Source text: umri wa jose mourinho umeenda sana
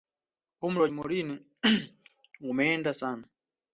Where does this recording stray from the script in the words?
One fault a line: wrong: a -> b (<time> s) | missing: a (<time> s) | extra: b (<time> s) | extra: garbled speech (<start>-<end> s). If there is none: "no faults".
missing: jose (0.9 s)